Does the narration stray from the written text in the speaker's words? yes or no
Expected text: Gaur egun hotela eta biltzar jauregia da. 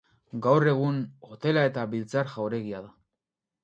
no